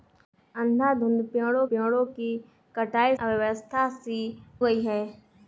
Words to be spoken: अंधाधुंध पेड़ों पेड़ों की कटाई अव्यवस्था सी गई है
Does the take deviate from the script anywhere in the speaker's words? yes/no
no